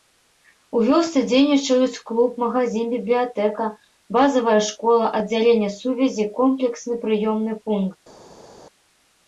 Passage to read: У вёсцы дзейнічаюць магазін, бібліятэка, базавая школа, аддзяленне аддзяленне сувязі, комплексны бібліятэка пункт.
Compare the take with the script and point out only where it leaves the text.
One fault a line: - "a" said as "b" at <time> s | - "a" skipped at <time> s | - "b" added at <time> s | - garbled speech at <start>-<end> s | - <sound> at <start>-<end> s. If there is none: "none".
- "клуб" added at 2.1 s
- "аддзяленне" skipped at 5.7 s
- "бібліятэка" said as "прыёмны" at 7.1 s